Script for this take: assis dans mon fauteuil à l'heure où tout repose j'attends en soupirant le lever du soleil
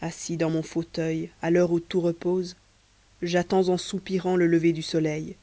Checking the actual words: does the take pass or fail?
pass